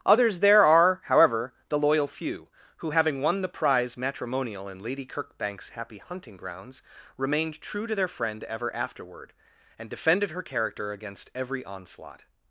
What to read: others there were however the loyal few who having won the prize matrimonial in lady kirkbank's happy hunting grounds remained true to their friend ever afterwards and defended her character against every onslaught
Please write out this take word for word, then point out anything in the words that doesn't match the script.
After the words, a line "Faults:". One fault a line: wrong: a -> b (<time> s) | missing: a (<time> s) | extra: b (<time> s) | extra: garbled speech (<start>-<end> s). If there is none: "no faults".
others there are however the loyal few who having won the prize matrimonial in lady kirkbank's happy hunting grounds remained true to their friend ever afterward and defended her character against every onslaught
Faults:
wrong: were -> are (0.7 s)
wrong: afterwards -> afterward (8.8 s)